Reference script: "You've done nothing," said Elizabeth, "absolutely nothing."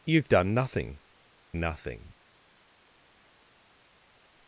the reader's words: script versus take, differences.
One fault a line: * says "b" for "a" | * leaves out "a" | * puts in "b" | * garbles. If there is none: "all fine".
* leaves out "said Elizabeth absolutely"